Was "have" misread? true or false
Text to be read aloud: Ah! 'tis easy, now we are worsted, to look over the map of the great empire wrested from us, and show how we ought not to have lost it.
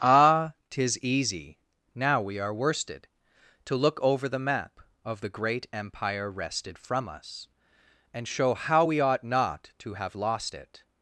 false